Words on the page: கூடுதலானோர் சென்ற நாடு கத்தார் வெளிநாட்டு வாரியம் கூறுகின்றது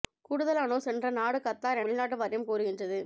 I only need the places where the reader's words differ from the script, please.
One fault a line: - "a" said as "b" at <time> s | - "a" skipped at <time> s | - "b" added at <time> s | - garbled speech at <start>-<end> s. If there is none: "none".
none